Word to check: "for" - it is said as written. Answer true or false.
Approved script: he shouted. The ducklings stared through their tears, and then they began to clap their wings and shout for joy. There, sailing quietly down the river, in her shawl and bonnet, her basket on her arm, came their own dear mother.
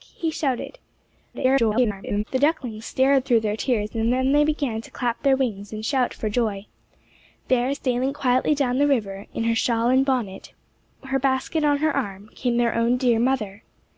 true